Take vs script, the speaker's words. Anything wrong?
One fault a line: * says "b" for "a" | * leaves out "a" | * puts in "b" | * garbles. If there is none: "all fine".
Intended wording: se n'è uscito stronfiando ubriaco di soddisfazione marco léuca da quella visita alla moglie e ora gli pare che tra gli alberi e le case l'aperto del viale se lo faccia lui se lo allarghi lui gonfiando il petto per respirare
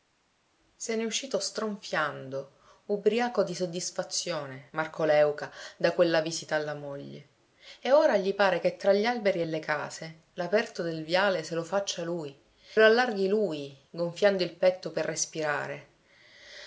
* leaves out "se"